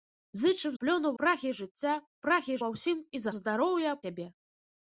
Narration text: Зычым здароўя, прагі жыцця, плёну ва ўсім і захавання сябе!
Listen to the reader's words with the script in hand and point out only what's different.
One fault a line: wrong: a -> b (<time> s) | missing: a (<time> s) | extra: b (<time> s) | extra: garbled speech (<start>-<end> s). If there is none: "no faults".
wrong: здароўя -> плёну (0.8 s)
wrong: плёну -> прагі (2.3 s)
wrong: захавання -> здароўя (3.3 s)